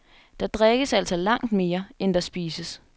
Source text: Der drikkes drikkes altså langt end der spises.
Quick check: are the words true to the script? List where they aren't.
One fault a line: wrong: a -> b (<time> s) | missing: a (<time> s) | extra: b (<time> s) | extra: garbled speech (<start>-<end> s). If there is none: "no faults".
missing: drikkes (0.9 s)
extra: mere (1.5 s)